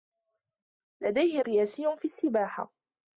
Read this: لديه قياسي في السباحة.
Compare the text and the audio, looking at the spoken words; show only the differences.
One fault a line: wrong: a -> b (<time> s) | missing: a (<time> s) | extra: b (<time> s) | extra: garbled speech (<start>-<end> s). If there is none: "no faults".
no faults